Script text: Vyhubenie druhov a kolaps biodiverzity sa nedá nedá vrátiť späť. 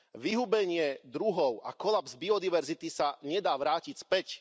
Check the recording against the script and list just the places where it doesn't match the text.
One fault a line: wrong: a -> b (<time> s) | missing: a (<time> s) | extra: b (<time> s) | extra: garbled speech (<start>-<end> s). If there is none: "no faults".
missing: nedá (3.5 s)